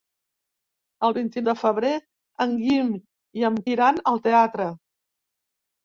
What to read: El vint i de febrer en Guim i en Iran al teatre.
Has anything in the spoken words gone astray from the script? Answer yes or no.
no